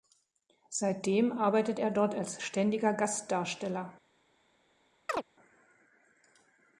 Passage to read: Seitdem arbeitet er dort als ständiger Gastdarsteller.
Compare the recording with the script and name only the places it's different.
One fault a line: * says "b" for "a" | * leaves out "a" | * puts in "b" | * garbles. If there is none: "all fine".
all fine